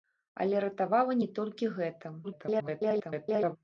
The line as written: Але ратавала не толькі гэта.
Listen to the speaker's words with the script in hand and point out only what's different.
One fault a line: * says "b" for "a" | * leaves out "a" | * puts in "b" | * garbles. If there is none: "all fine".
* garbles